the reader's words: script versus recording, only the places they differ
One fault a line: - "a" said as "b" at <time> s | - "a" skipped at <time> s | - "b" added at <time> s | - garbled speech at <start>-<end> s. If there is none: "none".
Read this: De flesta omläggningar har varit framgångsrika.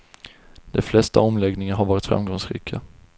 none